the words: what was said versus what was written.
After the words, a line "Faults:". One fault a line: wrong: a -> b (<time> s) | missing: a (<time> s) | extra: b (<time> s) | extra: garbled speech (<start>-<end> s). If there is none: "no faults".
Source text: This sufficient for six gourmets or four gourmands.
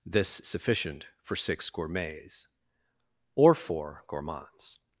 This sufficient for six gourmets or four gourmands.
Faults:
no faults